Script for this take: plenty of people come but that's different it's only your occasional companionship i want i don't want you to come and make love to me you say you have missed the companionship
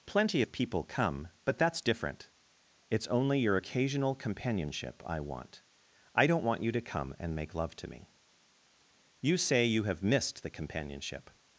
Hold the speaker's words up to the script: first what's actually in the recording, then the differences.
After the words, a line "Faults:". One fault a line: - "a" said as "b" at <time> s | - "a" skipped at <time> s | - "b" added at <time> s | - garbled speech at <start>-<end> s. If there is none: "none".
plenty of people come but that's different it's only your occasional companionship i want i don't want you to come and make love to me you say you have missed the companionship
Faults:
none